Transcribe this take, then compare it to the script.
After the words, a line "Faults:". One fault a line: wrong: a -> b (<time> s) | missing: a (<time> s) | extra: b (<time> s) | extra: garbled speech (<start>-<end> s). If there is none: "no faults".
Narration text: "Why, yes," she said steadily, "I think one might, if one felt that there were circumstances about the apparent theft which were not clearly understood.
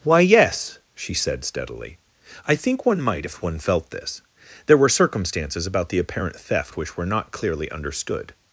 "Why, yes," she said steadily, "I think one might, if one felt this there were circumstances about the apparent theft which were not clearly understood.
Faults:
wrong: that -> this (3.9 s)